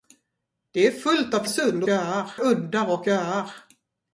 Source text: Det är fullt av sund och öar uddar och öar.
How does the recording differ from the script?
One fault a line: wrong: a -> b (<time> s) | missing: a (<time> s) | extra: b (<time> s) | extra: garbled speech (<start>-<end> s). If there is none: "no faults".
no faults